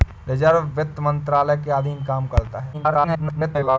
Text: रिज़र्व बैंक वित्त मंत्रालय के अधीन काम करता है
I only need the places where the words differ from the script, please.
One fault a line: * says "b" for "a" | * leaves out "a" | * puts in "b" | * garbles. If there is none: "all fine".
* leaves out "बैंक"
* garbles